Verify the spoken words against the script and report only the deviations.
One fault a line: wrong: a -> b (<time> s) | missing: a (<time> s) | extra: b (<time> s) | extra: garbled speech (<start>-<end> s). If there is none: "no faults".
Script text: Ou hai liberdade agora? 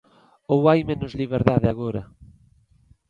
extra: menos (0.9 s)